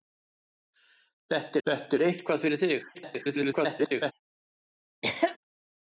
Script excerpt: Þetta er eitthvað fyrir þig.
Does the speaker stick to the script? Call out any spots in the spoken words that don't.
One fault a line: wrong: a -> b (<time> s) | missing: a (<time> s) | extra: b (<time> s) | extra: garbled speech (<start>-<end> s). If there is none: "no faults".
extra: þetta (1.7 s)
extra: garbled speech (2.9-4.1 s)